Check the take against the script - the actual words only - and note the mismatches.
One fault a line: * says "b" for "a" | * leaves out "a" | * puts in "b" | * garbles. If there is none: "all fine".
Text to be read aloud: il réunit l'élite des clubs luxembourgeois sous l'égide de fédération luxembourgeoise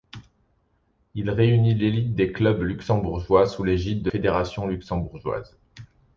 all fine